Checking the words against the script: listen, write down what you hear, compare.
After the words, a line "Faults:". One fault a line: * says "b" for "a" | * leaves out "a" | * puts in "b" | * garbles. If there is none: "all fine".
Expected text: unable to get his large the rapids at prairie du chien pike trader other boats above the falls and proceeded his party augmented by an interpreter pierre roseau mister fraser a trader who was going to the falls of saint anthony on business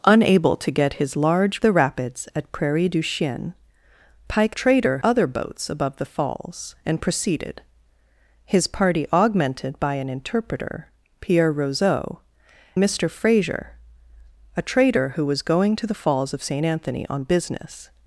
unable to get his large the rapids at prairie du chien pike trader other boats above the falls and proceeded his party augmented by an interpreter pierre roseau mister fraser a trader who was going to the falls of saint anthony on business
Faults:
all fine